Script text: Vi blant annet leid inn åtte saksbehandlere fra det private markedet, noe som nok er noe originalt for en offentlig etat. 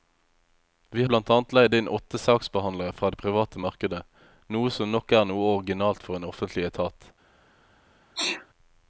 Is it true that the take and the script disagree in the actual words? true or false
false